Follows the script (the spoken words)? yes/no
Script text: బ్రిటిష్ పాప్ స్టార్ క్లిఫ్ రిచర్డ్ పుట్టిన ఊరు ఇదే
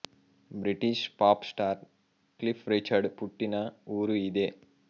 yes